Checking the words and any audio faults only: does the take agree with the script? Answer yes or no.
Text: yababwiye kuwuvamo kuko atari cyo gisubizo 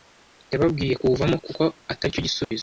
no